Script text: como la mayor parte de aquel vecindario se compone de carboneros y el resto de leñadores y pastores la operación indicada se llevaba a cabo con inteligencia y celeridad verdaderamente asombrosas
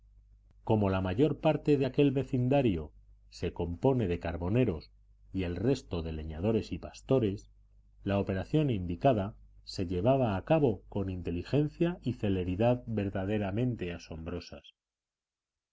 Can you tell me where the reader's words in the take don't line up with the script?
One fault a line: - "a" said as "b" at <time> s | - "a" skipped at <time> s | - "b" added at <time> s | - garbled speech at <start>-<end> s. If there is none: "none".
none